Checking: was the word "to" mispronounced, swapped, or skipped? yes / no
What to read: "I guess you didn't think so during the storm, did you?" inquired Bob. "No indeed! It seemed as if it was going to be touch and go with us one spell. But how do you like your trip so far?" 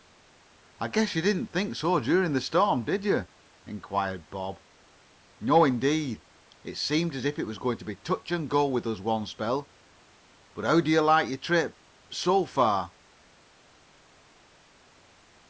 no